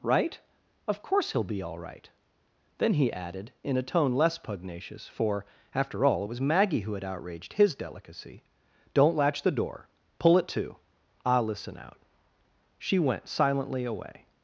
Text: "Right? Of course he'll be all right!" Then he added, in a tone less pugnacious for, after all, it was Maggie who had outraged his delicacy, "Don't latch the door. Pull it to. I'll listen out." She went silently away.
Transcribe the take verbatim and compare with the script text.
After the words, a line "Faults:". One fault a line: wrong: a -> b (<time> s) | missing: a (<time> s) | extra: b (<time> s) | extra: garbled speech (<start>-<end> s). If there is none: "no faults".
"Right? Of course he'll be all right!" Then he added, in a tone less pugnacious for, after all, it was Maggie who had outraged his delicacy, "Don't latch the door. Pull it to. I'll listen out." She went silently away.
Faults:
no faults